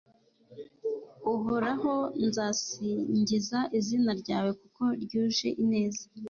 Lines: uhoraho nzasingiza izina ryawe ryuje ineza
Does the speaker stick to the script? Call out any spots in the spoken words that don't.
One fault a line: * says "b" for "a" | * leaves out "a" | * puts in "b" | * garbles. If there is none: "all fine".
* puts in "kuko"